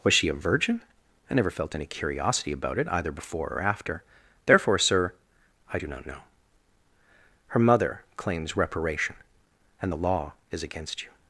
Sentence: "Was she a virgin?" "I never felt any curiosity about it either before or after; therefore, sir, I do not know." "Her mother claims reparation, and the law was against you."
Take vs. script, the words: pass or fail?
fail